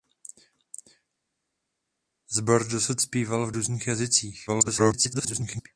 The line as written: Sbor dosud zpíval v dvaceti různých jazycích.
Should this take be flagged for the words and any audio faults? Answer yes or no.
yes